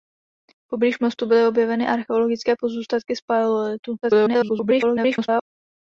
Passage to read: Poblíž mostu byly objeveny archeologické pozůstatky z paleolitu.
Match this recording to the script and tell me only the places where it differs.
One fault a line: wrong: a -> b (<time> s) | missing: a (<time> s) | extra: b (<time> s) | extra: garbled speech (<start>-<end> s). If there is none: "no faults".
extra: garbled speech (4.0-5.4 s)